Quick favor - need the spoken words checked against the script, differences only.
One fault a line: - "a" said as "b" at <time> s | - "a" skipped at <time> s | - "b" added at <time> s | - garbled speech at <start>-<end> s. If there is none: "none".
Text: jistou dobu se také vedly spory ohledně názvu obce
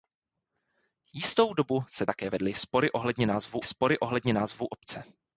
- "spory ohledně názvu" added at 3.6 s